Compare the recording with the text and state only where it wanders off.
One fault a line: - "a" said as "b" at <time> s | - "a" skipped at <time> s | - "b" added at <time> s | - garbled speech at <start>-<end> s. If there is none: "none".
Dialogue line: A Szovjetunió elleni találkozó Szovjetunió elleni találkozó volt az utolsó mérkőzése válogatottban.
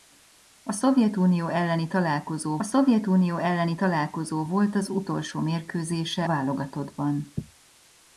none